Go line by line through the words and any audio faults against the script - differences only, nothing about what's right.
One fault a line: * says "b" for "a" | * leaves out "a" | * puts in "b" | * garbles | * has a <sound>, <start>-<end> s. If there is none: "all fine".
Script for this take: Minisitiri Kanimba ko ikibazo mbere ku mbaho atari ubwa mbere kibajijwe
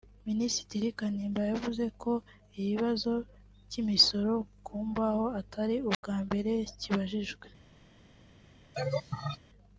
* puts in "yavuze"
* says "cy'imisoro" for "mbere"
* has a dropout, 5.9-6.0 s
* has a laugh, 8.7-9.4 s